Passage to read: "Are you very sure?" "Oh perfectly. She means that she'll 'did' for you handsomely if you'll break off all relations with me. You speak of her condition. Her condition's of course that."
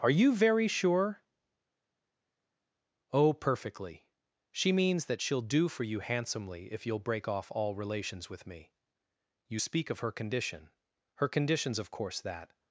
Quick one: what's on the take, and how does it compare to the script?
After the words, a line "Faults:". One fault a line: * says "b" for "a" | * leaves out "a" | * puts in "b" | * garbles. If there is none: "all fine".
"Are you very sure?" "Oh perfectly. She means that she'll 'do' for you handsomely if you'll break off all relations with me. You speak of her condition. Her condition's of course that."
Faults:
* says "do" for "did"